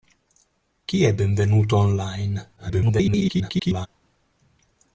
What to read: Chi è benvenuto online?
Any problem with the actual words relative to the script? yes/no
yes